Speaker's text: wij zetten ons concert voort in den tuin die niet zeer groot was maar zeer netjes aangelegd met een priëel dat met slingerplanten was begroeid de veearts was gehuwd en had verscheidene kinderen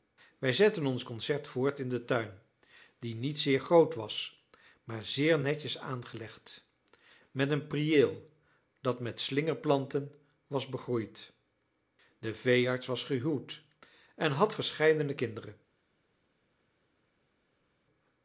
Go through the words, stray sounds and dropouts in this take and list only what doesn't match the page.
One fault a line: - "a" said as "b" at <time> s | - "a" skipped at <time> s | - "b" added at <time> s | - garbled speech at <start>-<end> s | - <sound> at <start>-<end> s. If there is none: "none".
none